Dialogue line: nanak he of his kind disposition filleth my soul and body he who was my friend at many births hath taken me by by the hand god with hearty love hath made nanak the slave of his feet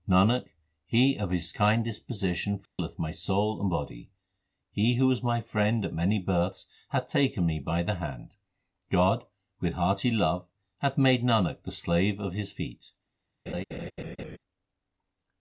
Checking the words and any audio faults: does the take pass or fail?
fail